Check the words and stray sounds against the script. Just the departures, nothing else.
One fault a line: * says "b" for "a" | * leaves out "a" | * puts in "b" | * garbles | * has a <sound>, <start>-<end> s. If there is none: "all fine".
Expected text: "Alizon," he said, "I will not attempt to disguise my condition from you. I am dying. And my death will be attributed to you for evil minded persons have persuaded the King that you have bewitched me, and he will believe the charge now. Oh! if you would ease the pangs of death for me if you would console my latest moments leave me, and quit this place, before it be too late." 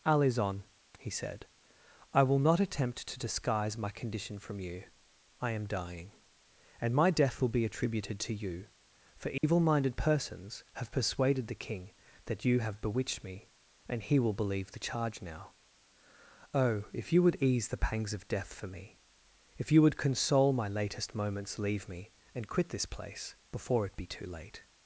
* has a dropout, 9.4-9.4 s